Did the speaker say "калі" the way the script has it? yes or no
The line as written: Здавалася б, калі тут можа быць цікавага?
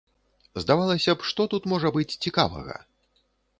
no